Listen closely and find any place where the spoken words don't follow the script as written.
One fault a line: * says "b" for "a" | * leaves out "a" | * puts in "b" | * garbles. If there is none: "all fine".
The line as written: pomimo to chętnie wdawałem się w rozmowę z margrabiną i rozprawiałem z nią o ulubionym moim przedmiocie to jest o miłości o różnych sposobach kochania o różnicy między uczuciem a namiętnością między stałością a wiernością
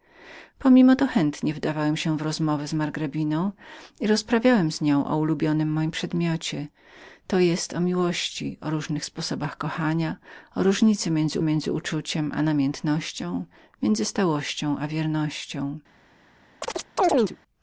* puts in "między"